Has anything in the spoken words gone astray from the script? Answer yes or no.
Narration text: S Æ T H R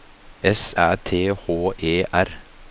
yes